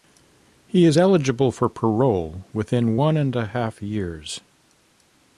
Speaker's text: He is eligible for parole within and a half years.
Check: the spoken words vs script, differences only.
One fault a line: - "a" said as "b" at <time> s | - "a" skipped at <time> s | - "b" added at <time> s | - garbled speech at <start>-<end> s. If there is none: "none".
- "one" added at 2.9 s